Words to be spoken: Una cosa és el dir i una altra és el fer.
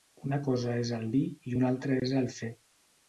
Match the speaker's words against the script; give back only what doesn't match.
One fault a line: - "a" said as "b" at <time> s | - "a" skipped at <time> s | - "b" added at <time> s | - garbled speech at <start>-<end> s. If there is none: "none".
none